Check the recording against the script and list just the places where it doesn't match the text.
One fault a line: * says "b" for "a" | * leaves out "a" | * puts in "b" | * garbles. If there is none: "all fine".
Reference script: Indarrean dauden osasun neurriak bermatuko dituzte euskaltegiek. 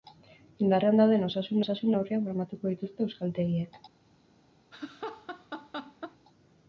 * puts in "osasun"